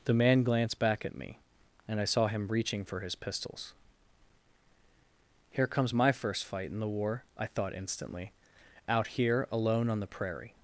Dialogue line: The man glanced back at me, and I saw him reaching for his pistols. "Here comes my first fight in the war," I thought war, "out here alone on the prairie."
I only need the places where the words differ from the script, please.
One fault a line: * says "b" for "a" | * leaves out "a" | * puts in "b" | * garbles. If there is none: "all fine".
* says "instantly" for "war"